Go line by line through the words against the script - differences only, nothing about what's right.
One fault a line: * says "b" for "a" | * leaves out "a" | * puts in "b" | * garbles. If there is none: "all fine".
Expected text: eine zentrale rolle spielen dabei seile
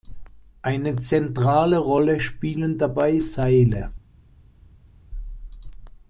all fine